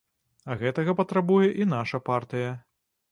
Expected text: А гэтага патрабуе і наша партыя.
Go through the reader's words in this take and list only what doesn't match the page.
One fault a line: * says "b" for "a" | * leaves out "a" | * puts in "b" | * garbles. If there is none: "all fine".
all fine